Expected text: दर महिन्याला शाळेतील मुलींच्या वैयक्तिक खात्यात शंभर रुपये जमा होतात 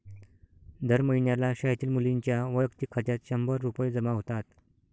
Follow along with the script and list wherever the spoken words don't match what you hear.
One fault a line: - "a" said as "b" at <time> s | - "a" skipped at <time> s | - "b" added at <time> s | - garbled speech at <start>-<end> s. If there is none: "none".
none